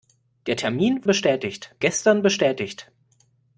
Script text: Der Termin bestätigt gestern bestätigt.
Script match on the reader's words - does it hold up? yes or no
yes